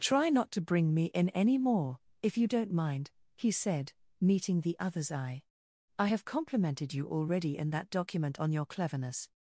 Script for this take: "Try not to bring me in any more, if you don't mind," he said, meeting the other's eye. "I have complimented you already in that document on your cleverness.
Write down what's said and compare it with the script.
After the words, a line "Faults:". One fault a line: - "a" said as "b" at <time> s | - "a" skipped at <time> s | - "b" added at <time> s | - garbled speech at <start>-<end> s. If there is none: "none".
"Try not to bring me in any more, if you don't mind," he said, meeting the other's eye. "I have complimented you already in that document on your cleverness.
Faults:
none